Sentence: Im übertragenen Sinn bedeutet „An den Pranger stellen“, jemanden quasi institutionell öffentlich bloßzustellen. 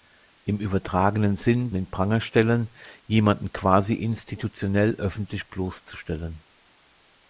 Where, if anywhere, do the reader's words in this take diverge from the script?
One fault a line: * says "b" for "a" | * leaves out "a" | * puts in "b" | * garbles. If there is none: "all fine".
* leaves out "bedeutet An"